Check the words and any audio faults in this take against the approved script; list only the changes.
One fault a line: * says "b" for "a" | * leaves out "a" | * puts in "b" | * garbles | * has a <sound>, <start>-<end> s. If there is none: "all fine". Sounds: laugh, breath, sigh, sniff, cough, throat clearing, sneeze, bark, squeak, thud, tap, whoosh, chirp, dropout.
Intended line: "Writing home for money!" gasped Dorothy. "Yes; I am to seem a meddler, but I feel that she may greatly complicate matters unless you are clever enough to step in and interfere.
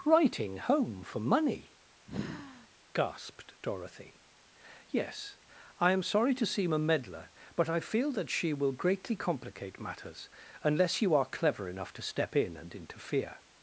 * has a sigh, 2.1-2.7 s
* puts in "sorry"
* says "will" for "may"